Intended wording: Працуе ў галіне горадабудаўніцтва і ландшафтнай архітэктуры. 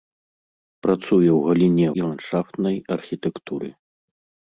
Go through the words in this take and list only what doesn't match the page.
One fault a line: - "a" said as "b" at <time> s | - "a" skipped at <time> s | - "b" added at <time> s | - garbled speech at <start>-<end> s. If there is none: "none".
- "горадабудаўніцтва" skipped at 1.9 s